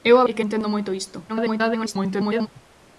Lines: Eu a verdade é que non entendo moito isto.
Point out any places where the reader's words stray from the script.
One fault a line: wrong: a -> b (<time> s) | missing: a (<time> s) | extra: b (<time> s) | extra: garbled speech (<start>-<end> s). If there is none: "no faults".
missing: verdade (0.2 s)
missing: non (0.4 s)
extra: garbled speech (1.3-2.5 s)